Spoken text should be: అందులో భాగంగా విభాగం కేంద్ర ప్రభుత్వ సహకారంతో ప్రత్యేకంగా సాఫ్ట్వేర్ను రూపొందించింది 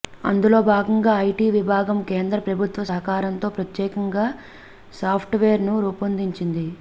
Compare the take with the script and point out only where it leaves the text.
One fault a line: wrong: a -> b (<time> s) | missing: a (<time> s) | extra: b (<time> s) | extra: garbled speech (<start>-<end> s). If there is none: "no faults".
extra: ఐటీ (1.2 s)